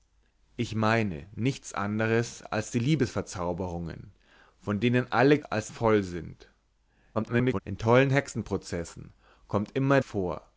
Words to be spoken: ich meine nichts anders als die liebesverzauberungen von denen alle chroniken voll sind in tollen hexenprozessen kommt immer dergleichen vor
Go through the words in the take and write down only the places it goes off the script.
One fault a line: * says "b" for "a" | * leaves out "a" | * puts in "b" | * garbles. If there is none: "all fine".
* says "als" for "chroniken"
* garbles
* leaves out "dergleichen"